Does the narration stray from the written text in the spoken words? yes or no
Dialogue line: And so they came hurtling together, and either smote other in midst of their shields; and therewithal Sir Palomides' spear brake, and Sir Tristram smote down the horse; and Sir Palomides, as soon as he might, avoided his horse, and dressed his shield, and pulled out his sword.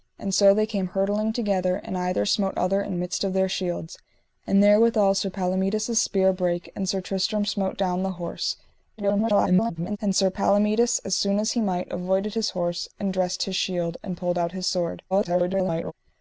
yes